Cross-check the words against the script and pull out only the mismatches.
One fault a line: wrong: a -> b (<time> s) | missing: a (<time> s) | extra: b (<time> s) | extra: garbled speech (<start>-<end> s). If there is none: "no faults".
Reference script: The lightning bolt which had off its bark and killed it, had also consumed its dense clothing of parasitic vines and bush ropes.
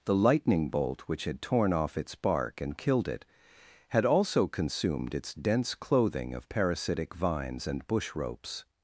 extra: torn (1.4 s)